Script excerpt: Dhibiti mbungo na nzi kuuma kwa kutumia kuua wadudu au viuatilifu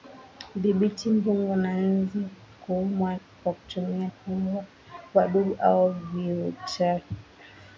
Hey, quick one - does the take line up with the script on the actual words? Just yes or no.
yes